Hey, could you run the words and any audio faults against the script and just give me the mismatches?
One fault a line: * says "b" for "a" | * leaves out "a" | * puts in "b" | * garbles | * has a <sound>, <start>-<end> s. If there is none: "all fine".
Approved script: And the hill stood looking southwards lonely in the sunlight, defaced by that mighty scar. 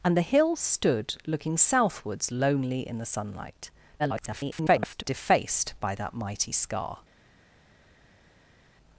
* garbles